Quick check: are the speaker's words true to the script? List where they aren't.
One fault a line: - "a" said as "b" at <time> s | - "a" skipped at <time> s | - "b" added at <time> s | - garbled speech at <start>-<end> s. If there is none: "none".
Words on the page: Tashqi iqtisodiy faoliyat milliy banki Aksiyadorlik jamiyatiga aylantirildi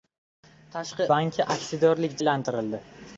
- "iqtisodiy faoliyat milliy" skipped at 1.1 s
- "jamiyatiga" skipped at 2.2 s